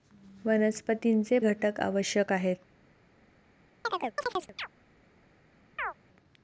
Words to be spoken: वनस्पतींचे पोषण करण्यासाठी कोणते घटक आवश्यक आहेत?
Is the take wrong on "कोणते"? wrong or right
wrong